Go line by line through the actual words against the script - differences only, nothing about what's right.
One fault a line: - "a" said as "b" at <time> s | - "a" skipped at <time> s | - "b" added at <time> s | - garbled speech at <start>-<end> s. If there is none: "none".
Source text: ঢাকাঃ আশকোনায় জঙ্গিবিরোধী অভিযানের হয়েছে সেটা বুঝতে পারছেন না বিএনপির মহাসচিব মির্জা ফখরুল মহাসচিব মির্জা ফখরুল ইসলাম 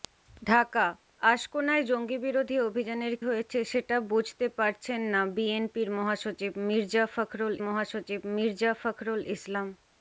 none